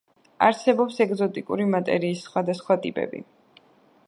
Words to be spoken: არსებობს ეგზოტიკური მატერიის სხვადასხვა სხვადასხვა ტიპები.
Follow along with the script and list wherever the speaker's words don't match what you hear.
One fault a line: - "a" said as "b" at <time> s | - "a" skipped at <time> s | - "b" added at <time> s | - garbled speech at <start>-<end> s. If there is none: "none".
- "სხვადასხვა" skipped at 2.8 s